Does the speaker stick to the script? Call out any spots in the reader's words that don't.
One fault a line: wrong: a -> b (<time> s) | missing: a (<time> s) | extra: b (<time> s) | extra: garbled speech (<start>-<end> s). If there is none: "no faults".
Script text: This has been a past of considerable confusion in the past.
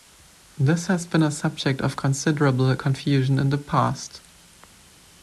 wrong: past -> subject (1.3 s)